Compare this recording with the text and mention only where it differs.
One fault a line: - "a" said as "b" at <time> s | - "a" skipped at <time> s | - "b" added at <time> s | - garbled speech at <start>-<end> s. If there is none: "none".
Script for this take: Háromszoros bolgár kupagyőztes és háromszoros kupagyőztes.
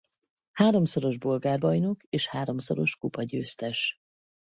- "kupagyőztes" said as "bajnok" at 1.6 s